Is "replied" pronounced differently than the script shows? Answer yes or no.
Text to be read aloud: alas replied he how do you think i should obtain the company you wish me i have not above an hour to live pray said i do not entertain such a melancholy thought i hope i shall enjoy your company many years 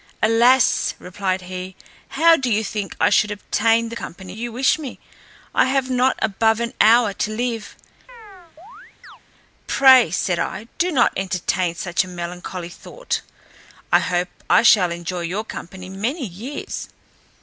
no